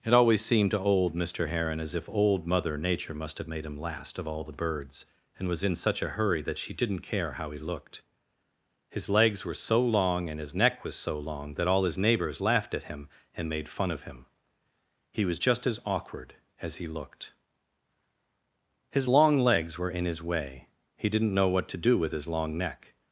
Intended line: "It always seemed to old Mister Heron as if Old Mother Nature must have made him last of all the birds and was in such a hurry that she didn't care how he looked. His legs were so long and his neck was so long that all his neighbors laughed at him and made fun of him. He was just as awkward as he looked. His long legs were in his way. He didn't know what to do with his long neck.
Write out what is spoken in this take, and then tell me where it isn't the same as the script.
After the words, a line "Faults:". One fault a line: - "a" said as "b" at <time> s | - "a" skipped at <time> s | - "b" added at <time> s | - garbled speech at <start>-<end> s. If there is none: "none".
"It always seemed to old Mister Heron as if Old Mother Nature must have made him last of all the birds and was in such a hurry that she didn't care how he looked. His legs were so long and his neck was so long that all his neighbors laughed at him and made fun of him. He was just as awkward as he looked. His long legs were in his way. He didn't know what to do with his long neck.
Faults:
none